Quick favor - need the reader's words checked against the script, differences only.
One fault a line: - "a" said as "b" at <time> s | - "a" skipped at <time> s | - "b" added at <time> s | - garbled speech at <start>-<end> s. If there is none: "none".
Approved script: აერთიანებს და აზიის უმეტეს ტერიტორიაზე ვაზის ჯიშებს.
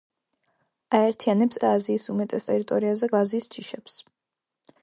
none